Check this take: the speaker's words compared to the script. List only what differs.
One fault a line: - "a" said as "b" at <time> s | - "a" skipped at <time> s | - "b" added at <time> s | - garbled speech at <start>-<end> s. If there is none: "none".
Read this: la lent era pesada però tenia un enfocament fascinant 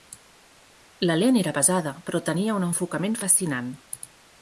none